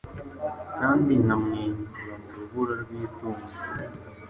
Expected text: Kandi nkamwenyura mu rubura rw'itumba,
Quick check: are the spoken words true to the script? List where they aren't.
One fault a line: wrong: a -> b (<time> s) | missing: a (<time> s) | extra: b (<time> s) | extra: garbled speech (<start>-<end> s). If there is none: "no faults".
no faults